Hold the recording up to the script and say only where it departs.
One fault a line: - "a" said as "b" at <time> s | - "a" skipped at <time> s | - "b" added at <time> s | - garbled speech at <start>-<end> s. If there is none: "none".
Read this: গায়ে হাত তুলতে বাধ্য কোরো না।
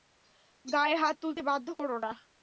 none